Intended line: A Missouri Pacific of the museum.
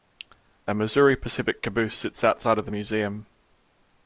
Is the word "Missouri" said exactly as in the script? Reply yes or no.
yes